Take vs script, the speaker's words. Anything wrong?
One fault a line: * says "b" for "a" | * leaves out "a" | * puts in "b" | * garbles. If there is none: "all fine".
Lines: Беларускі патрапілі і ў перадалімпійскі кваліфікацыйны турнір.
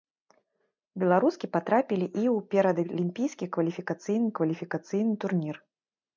* puts in "кваліфікацыйны"